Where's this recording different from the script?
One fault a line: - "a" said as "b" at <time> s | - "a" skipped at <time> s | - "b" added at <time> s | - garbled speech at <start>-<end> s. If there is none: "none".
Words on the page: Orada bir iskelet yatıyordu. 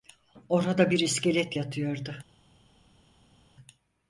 none